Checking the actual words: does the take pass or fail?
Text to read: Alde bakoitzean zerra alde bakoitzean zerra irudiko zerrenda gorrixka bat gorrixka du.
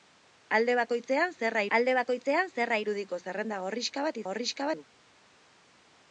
pass